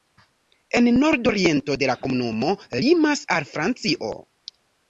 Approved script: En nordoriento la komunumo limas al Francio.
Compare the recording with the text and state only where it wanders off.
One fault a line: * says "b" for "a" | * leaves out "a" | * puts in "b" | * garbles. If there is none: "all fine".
all fine